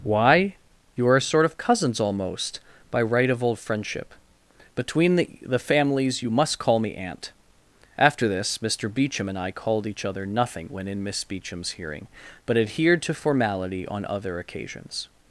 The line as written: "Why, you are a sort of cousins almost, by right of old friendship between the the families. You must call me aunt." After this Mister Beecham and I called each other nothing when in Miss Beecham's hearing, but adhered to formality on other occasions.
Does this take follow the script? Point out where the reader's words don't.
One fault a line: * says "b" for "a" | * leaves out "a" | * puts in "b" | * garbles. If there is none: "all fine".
all fine